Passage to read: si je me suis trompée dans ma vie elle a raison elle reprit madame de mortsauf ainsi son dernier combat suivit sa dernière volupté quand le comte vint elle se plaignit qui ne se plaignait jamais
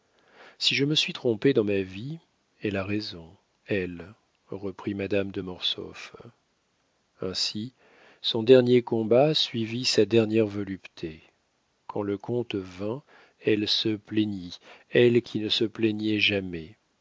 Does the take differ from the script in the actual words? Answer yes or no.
yes